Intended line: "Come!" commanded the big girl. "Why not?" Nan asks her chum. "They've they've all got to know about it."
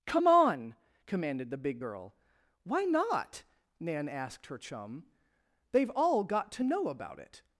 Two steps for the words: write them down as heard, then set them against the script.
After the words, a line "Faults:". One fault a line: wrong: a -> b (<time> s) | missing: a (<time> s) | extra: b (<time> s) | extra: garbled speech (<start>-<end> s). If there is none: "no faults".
"Come on!" commanded the big girl. "Why not?" Nan asked her chum. "They've all got to know about it."
Faults:
extra: on (0.3 s)
wrong: asks -> asked (4.1 s)
missing: they've (5.9 s)